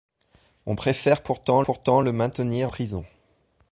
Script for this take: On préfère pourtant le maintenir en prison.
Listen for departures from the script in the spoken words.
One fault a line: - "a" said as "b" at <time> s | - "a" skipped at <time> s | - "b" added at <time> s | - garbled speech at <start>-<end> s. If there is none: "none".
- "pourtant" added at 1.6 s
- "en" skipped at 2.7 s